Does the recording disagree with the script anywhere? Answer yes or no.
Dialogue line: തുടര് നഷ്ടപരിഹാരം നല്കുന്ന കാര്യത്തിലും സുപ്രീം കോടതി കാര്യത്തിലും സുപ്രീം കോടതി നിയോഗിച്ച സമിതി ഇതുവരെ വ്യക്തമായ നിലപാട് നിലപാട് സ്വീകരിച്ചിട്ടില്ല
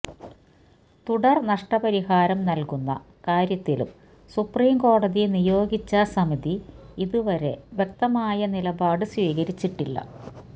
yes